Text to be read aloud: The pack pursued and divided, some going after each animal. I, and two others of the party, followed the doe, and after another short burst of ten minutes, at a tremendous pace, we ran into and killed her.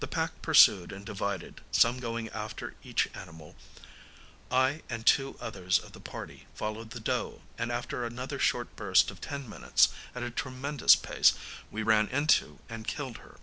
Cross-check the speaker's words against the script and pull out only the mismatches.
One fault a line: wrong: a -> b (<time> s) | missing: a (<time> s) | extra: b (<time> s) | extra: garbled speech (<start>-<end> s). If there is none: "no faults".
no faults